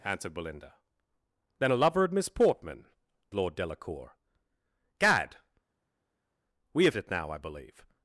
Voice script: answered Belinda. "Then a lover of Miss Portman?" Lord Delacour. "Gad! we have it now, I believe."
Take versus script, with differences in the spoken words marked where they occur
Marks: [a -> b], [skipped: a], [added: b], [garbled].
answered Belinda. "Then a lover of Miss Portman?" Lord Delacour. "Gad! we have it now, I believe."